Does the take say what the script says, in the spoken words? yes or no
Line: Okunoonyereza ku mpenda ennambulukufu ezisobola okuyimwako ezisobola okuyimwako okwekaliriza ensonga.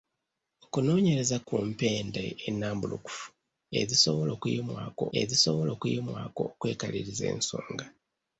yes